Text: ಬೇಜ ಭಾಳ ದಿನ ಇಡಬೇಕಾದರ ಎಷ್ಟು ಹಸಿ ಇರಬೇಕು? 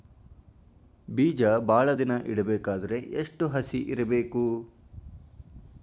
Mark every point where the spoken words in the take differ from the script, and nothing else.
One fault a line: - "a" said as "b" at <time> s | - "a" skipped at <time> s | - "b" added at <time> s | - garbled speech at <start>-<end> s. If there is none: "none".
none